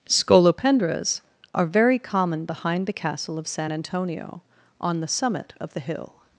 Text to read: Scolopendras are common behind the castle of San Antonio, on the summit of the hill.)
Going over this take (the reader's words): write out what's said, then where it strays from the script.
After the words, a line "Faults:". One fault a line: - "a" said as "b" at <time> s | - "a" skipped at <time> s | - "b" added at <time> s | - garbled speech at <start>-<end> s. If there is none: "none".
Scolopendras are very common behind the castle of San Antonio, on the summit of the hill.)
Faults:
- "very" added at 1.7 s